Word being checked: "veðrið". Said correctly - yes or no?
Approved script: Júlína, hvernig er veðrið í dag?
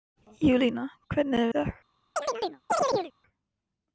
no